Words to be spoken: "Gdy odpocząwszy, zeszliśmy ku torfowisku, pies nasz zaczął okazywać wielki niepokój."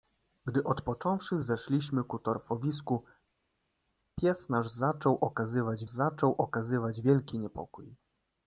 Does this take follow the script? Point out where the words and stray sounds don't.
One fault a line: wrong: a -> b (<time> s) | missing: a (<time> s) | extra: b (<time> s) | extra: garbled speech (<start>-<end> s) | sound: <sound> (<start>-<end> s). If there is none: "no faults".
extra: zaczął okazywać (5.9 s)